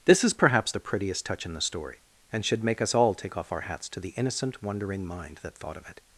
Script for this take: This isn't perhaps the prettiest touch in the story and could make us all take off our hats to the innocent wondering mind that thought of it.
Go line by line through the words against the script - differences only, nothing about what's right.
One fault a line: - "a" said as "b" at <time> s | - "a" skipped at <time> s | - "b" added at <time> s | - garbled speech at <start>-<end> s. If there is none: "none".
- "isn't" said as "is" at 0.2 s
- "could" said as "should" at 2.4 s